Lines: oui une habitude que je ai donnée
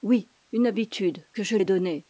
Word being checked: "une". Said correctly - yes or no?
yes